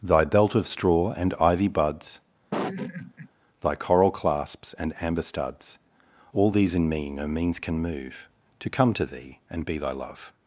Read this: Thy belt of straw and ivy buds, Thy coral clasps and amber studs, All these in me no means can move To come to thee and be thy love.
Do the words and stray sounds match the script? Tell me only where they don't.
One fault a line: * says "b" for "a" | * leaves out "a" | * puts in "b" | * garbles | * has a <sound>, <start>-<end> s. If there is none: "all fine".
* has a laugh, 2.5-3.3 s